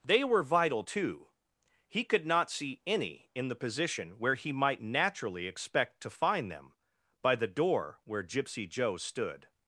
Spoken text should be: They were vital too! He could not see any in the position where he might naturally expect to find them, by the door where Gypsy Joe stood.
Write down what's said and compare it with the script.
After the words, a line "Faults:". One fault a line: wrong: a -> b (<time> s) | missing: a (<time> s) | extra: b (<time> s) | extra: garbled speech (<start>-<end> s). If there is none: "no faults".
They were vital too! He could not see any in the position where he might naturally expect to find them, by the door where Gypsy Joe stood.
Faults:
no faults